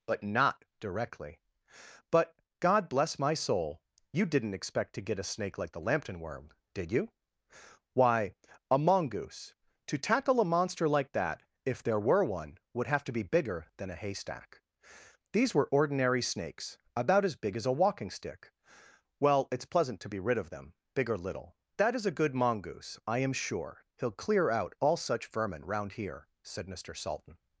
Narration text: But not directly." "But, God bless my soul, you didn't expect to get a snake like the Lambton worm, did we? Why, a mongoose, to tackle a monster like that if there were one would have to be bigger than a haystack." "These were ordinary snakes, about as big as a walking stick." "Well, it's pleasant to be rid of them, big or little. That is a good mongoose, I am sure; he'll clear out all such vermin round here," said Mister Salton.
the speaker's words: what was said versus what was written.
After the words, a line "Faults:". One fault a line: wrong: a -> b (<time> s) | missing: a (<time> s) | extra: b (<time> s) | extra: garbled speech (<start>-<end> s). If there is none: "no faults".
But not directly." "But, God bless my soul, you didn't expect to get a snake like the Lambton worm, did you? Why, a mongoose, to tackle a monster like that if there were one would have to be bigger than a haystack." "These were ordinary snakes, about as big as a walking stick." "Well, it's pleasant to be rid of them, big or little. That is a good mongoose, I am sure; he'll clear out all such vermin round here," said Mister Salton.
Faults:
wrong: we -> you (6.9 s)